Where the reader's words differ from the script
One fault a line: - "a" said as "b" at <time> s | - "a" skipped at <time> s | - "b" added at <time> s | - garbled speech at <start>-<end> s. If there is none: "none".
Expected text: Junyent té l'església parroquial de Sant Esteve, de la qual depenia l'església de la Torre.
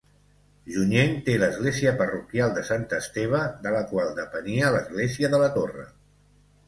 none